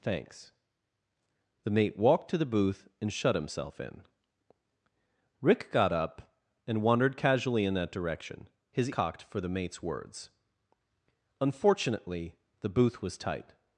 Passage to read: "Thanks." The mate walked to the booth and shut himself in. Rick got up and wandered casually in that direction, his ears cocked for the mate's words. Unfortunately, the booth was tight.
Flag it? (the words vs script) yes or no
yes